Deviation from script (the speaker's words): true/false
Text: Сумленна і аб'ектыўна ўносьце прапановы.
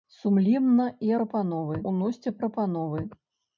true